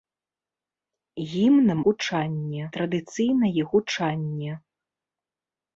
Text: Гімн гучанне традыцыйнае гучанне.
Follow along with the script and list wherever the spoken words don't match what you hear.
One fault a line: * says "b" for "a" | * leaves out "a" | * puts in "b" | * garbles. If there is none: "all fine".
all fine